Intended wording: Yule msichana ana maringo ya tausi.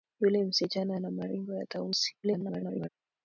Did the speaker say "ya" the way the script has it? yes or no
yes